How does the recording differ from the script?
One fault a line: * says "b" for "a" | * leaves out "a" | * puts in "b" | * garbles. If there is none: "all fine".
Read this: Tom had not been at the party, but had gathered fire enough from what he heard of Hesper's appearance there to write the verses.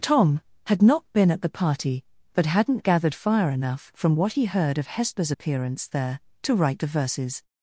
* says "hadn't" for "had"